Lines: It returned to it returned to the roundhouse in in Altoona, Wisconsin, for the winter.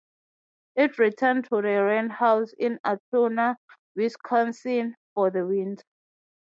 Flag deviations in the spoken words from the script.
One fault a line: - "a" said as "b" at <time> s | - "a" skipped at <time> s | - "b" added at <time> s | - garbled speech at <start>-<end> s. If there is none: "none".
- "it returned to" skipped at 1.6 s
- "in" skipped at 2.8 s